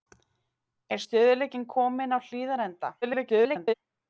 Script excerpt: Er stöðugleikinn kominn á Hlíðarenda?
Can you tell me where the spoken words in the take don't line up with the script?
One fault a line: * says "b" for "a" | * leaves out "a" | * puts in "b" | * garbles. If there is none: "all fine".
* garbles